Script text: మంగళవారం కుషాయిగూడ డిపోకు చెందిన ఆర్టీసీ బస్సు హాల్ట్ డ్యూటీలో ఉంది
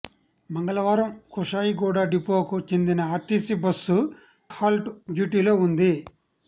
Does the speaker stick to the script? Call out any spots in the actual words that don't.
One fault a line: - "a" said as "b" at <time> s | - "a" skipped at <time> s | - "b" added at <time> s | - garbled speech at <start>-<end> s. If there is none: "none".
none